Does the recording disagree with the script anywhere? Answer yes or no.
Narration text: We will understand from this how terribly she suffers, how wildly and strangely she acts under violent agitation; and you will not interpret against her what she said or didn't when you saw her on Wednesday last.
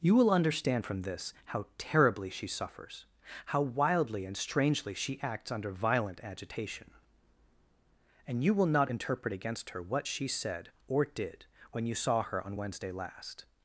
yes